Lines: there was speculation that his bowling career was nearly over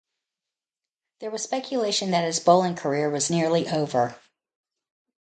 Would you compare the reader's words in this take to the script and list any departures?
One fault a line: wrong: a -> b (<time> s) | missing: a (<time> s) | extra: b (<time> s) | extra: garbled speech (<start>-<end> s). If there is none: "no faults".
no faults